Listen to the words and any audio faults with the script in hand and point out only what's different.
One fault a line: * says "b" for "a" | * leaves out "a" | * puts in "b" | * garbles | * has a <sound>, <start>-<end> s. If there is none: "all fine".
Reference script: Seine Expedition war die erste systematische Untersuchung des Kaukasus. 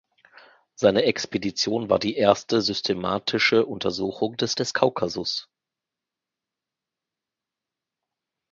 * puts in "des"